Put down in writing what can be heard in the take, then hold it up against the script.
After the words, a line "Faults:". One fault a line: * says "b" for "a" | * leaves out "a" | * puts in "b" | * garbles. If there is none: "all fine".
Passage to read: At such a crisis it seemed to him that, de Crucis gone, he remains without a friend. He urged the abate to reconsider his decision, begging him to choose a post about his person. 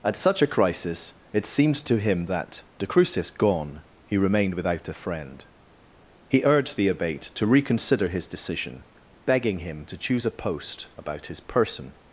At such a crisis it seemed to him that, de Crucis gone, he remained without a friend. He urged the abate to reconsider his decision, begging him to choose a post about his person.
Faults:
* says "remained" for "remains"